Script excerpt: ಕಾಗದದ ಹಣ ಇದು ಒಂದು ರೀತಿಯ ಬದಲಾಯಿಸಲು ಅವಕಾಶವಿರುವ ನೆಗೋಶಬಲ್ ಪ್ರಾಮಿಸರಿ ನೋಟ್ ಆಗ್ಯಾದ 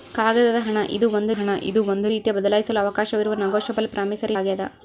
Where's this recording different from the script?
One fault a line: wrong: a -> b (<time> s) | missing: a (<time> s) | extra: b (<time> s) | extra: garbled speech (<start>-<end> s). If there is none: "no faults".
extra: ಹಣ ಇದು ಒಂದು (1.3 s)
missing: ನೋಟ್ (4.4 s)